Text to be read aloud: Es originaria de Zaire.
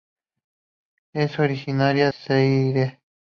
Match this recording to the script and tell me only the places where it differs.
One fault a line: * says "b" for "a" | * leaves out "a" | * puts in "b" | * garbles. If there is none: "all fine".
* leaves out "de"